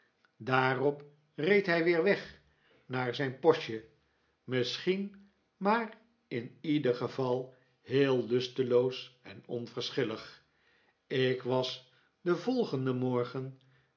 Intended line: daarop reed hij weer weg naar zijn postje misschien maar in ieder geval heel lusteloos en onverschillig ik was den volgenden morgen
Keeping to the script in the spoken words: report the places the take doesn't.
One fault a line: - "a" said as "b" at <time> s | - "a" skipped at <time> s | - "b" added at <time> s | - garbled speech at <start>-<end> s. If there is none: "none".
none